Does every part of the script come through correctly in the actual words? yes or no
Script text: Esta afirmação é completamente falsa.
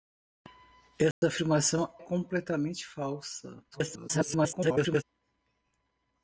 no